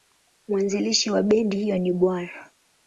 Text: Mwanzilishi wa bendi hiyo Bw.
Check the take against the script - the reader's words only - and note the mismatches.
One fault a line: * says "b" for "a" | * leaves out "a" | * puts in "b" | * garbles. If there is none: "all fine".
* puts in "ni"